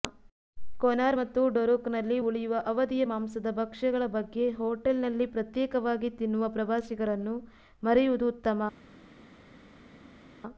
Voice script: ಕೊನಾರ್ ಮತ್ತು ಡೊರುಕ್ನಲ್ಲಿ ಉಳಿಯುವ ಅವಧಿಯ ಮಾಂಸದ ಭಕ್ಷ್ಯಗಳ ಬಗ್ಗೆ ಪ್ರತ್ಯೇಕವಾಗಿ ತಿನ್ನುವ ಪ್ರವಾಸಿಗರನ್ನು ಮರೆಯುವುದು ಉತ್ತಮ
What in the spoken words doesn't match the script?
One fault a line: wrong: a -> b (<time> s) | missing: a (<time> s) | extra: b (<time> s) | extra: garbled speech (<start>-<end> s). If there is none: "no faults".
extra: ಹೋಟೆಲ್ನಲ್ಲಿ (4.5 s)